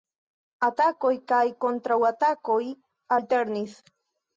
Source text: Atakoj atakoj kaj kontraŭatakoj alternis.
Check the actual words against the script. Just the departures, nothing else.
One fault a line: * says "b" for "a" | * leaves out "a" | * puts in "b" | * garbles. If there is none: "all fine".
* leaves out "atakoj"